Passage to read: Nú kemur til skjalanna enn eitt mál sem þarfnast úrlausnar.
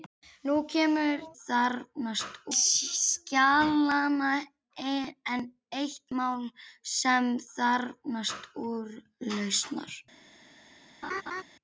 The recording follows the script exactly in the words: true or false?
false